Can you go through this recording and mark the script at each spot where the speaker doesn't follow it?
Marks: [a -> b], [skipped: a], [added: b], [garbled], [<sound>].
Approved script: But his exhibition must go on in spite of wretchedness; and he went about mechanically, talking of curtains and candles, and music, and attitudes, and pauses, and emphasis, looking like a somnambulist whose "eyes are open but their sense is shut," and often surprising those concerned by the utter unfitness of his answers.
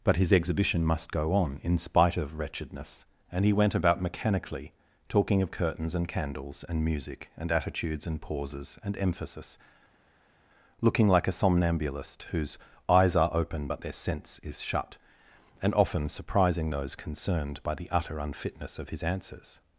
But his exhibition must go on in spite of wretchedness; and he went about mechanically, talking of curtains and candles, and music, and attitudes, and pauses, and emphasis, looking like a somnambulist whose "eyes are open but their sense is shut," and often surprising those concerned by the utter unfitness of his answers.